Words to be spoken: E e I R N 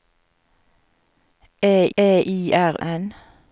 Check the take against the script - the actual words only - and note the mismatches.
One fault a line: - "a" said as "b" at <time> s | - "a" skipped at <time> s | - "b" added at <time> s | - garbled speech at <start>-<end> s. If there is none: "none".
none